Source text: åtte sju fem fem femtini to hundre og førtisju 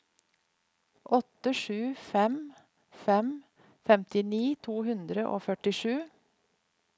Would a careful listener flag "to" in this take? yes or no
no